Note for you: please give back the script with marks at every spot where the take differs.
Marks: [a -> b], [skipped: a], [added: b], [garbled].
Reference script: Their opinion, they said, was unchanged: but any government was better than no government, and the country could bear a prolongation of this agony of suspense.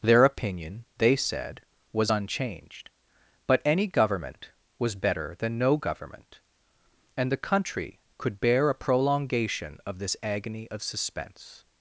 Their opinion, they said, was unchanged: but any government was better than no government, and the country could bear a prolongation of this agony of suspense.